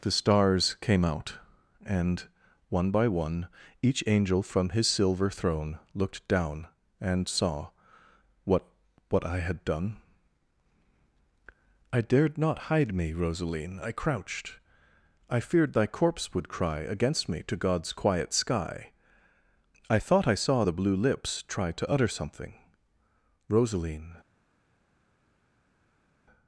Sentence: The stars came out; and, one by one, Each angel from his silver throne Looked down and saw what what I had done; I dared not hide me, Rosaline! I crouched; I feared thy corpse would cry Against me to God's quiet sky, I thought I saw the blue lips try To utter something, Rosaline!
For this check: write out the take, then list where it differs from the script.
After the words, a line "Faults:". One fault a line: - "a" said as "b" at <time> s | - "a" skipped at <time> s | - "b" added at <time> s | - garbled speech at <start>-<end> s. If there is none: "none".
The stars came out; and, one by one, Each angel from his silver throne Looked down and saw what what I had done; I dared not hide me, Rosaline! I crouched; I feared thy corpse would cry Against me to God's quiet sky, I thought I saw the blue lips try To utter something, Rosaline!
Faults:
none